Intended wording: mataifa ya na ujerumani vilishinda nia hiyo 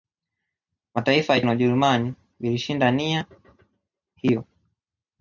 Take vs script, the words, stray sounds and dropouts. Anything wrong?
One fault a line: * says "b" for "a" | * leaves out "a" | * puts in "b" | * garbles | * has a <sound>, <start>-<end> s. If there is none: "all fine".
all fine